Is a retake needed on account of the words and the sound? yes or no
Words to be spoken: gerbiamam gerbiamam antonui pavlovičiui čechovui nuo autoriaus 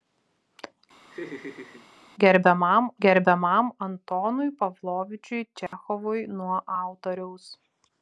yes